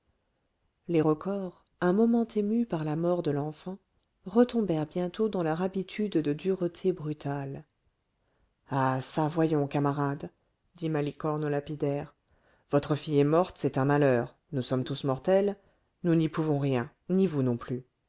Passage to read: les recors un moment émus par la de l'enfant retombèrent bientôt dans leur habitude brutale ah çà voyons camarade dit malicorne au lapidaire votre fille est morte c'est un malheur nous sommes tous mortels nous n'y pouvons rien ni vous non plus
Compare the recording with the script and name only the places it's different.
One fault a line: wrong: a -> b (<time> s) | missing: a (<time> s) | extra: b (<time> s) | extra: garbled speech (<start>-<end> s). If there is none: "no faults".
extra: mort (2.9 s)
extra: de dureté (6.1 s)